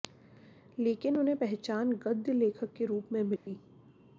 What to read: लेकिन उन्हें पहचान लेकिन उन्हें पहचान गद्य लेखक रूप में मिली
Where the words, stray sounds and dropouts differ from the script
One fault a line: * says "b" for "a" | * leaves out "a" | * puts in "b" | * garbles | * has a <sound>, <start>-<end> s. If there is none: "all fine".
* leaves out "लेकिन उन्हें पहचान"
* puts in "के"
* has a dropout, 3.4-3.5 s